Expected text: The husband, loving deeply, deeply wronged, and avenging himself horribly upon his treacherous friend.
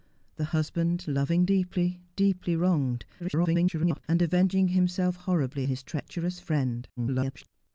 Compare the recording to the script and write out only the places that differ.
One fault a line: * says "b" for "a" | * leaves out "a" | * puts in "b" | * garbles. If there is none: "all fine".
* garbles
* leaves out "upon"
* garbles